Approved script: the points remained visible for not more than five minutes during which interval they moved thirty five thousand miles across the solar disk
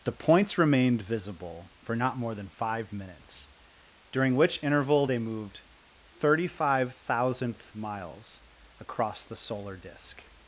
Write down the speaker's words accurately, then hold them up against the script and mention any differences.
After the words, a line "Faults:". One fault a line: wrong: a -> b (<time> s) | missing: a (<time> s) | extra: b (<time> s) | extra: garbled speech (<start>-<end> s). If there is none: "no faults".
the points remained visible for not more than five minutes during which interval they moved thirty five thousandth miles across the solar disk
Faults:
wrong: thousand -> thousandth (6.9 s)